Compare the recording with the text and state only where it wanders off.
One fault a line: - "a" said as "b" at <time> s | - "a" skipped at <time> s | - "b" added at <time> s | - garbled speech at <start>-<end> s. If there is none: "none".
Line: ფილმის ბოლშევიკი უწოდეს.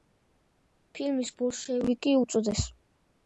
none